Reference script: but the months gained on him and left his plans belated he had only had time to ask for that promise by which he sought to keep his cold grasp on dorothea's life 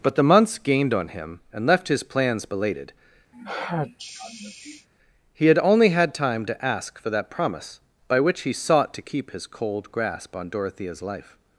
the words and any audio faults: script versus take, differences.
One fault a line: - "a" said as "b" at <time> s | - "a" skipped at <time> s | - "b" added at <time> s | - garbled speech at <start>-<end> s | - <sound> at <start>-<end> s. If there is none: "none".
- sneeze at 3.3-4.9 s